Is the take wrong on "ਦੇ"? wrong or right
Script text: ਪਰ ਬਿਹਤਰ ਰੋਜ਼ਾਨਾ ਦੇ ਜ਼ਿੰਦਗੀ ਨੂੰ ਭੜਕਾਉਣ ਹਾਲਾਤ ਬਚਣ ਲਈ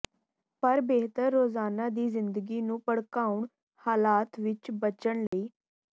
wrong